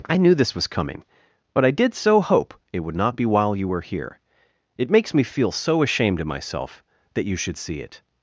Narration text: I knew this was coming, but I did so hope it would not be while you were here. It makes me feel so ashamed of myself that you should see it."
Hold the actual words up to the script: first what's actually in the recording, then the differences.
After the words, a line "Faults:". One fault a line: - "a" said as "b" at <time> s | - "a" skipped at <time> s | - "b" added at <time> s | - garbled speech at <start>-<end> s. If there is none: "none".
I knew this was coming, but I did so hope it would not be while you were here. It makes me feel so ashamed of myself that you should see it."
Faults:
none